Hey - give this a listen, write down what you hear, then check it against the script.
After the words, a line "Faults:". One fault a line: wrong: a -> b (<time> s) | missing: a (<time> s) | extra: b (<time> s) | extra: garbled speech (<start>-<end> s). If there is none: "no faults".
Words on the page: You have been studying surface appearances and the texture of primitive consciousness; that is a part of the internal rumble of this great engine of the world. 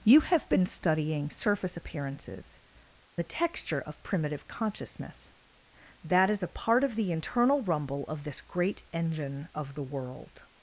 You have been studying surface appearances the texture of primitive consciousness; that is a part of the internal rumble of this great engine of the world.
Faults:
missing: and (2.6 s)